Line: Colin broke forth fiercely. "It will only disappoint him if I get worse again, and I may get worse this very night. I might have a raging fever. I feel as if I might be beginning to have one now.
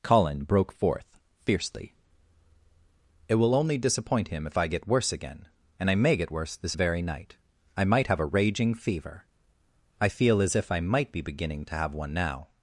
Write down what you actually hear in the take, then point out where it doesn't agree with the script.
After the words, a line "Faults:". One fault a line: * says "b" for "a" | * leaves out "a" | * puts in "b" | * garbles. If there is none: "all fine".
Colin broke forth fiercely. "It will only disappoint him if I get worse again, and I may get worse this very night. I might have a raging fever. I feel as if I might be beginning to have one now.
Faults:
all fine